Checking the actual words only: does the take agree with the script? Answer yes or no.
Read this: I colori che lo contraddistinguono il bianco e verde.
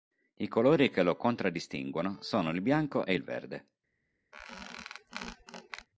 no